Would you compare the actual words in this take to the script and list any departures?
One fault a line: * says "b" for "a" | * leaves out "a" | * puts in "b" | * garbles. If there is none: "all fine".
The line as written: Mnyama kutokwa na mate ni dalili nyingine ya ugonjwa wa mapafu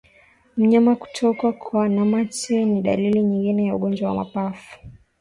all fine